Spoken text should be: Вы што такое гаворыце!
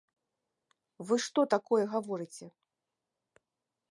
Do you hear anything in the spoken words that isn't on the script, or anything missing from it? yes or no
no